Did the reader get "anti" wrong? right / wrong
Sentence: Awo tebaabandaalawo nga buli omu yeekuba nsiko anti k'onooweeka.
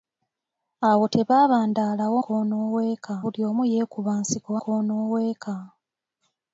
wrong